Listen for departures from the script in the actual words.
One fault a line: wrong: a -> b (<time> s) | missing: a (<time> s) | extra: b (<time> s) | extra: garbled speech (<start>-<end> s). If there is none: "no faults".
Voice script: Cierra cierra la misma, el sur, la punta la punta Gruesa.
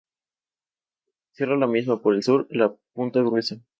missing: cierra (1.6 s)
extra: por (2.0 s)
missing: la punta (3.2 s)